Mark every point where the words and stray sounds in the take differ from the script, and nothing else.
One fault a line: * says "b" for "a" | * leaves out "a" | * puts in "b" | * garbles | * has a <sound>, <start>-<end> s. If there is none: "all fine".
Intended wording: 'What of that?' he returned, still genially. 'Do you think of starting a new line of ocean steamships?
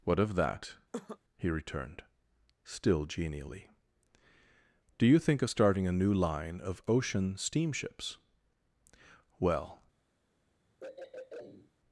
* has a cough, 0.9-1.2 s
* puts in "Well"
* has a throat clearing, 10.8-11.7 s